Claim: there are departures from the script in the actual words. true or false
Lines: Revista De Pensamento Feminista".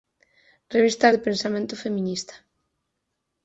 false